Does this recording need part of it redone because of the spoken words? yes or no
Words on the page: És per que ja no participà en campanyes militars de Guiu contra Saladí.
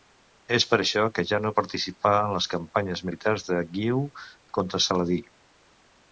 yes